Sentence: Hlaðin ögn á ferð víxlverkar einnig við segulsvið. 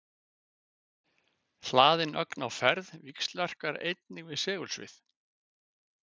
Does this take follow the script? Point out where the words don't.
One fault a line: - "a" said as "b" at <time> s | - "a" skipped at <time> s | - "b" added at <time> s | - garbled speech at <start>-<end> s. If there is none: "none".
none